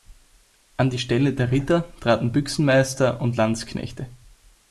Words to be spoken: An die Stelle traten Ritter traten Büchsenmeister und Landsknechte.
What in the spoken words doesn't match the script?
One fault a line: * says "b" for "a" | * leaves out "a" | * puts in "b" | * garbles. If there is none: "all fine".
* says "der" for "traten"